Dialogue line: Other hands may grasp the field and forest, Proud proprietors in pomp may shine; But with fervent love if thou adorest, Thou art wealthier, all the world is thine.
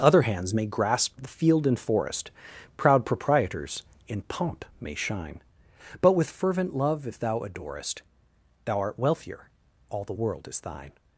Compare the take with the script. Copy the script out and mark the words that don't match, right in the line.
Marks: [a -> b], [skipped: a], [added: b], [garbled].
Other hands may grasp the field and forest, Proud proprietors in pomp may shine; But with fervent love if thou adorest, Thou art wealthier, all the world is thine.